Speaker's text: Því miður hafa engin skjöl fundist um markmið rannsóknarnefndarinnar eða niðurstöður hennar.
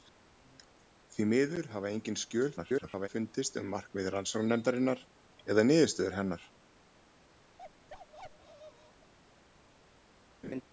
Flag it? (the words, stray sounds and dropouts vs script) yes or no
yes